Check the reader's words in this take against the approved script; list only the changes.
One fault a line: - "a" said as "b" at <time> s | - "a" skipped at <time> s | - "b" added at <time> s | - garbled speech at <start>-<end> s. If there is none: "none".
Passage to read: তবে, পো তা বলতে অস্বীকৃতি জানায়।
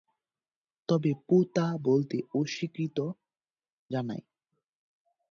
none